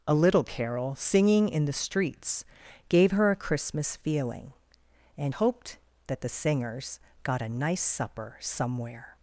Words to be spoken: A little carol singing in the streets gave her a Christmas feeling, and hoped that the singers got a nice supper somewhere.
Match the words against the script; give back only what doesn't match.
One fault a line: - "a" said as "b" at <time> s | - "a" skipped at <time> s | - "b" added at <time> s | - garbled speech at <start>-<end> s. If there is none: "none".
none